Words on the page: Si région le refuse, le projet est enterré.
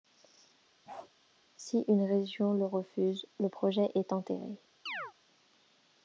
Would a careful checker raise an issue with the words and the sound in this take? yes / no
yes